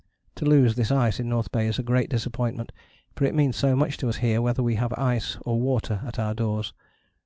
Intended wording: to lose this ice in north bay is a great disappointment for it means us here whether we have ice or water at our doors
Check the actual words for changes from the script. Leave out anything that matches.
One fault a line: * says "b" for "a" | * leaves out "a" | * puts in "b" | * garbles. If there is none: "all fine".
* puts in "so much to"